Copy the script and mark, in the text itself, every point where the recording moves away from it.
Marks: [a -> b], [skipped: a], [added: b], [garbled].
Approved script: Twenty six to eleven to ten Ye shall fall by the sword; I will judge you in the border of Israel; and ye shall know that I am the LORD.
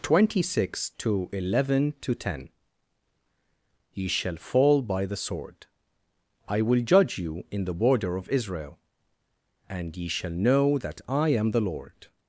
Twenty six to eleven to ten Ye shall fall by the sword; I will judge you in the border of Israel; and ye shall know that I am the LORD.